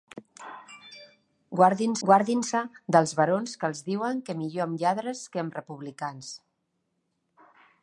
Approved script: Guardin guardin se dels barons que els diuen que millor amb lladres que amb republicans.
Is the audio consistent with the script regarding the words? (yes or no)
yes